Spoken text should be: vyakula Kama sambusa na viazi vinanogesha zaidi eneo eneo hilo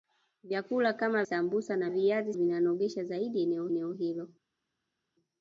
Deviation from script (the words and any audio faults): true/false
false